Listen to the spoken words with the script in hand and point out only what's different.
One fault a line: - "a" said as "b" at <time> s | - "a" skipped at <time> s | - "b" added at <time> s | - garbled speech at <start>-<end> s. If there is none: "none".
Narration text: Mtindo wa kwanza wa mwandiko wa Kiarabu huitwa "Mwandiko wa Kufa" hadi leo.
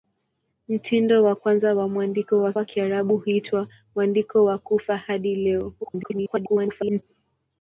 - "wa" added at 2.5 s
- garbled speech at 5.8-7.0 s